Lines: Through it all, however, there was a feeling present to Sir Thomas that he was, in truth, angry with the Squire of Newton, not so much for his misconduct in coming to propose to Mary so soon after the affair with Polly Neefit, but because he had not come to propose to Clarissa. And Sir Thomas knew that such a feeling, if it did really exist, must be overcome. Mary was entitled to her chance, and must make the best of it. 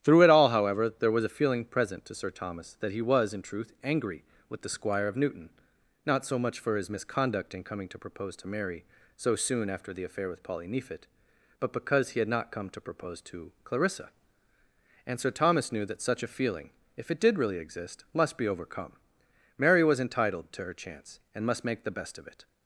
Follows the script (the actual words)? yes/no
yes